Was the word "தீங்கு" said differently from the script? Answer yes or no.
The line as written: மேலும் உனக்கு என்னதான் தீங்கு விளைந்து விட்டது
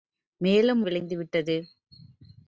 yes